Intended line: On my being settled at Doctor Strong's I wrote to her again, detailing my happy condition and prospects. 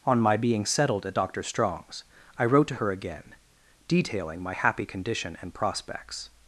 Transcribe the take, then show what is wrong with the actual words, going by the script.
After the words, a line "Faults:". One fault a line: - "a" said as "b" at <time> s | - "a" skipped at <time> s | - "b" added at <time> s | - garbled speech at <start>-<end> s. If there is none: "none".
On my being settled at Doctor Strong's I wrote to her again, detailing my happy condition and prospects.
Faults:
none